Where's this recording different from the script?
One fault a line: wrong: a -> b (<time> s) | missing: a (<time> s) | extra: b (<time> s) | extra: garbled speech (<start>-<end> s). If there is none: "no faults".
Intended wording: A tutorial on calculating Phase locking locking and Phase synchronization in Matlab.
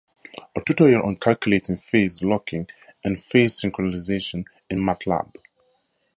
missing: locking (2.7 s)